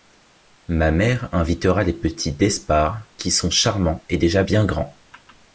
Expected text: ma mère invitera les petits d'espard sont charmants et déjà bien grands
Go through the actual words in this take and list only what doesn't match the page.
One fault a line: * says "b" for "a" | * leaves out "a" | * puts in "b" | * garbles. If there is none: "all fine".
* puts in "qui"